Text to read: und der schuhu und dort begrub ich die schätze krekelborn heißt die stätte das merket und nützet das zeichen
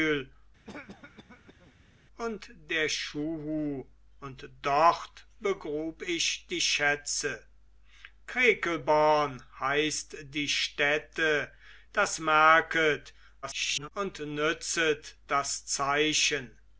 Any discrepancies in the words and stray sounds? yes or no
yes